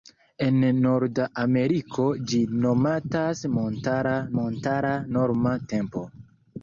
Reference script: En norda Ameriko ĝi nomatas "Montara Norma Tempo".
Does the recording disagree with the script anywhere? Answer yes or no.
yes